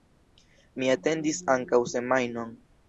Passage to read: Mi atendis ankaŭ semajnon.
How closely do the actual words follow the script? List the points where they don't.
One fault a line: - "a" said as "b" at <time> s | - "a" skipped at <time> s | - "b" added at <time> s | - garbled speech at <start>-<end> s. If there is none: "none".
none